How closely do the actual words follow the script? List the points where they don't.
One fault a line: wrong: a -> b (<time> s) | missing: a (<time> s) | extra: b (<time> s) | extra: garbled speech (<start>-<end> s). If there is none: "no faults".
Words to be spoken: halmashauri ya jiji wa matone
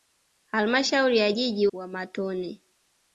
no faults